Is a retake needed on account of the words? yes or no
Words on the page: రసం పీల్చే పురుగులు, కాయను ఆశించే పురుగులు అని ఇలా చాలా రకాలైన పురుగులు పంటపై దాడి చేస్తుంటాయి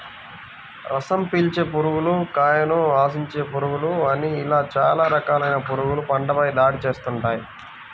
no